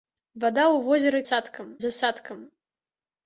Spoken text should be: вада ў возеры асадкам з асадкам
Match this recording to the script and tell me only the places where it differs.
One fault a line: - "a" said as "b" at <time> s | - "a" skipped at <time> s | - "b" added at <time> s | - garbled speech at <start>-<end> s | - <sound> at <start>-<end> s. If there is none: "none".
none